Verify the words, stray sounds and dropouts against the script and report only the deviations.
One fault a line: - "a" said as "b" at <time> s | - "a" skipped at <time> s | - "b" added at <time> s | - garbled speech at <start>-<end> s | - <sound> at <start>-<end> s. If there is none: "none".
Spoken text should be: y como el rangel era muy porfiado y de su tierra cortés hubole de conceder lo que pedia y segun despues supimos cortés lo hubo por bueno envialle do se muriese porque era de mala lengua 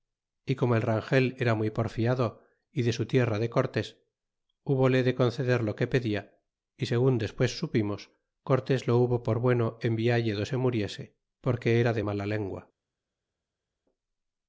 - "de" added at 3.4 s